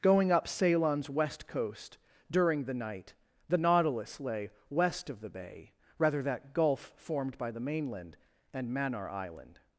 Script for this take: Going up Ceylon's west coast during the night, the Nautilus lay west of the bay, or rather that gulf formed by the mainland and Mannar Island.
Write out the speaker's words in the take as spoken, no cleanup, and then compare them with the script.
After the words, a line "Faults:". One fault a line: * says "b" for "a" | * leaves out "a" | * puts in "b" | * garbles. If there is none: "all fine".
Going up Ceylon's west coast during the night, the Nautilus lay west of the bay, rather that gulf formed by the mainland and Mannar Island.
Faults:
* leaves out "or"